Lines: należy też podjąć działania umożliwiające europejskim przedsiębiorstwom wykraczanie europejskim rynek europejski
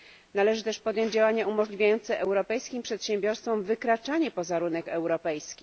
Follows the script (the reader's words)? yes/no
no